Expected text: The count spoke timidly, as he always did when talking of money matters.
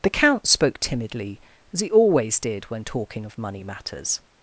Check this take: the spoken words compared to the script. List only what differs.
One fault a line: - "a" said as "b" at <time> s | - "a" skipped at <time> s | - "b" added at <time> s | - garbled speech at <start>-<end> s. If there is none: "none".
none